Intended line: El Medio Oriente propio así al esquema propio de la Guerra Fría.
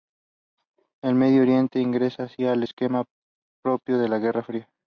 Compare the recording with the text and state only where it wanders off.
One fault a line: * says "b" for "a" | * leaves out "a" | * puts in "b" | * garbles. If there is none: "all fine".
* says "ingresa" for "propio"